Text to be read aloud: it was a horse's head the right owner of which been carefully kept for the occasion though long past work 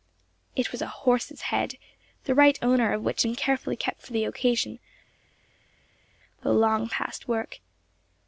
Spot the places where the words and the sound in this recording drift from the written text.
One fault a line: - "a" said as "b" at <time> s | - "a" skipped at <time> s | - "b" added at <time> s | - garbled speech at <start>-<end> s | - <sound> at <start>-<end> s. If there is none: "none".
none